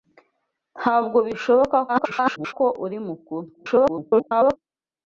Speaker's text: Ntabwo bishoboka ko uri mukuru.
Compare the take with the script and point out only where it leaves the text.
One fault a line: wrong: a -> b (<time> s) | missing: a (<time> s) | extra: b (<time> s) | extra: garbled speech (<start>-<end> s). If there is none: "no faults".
extra: garbled speech (1.9-2.5 s)
extra: garbled speech (3.5-4.6 s)